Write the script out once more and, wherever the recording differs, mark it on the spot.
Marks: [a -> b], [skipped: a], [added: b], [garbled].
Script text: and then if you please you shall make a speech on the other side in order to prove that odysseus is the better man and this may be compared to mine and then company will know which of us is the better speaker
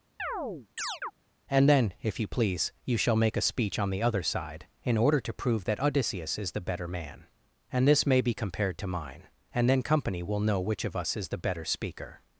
and then if you please you shall make a speech on the other side in order to prove that odysseus is the better man and this may be compared to mine and then company will know which of us is the better speaker